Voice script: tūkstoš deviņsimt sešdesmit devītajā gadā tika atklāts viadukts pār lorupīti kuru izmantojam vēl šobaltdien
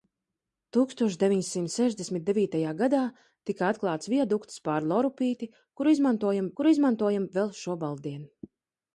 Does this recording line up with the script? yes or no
no